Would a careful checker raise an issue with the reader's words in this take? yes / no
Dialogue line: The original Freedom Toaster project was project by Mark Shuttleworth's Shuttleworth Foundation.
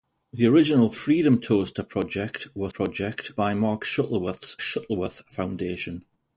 no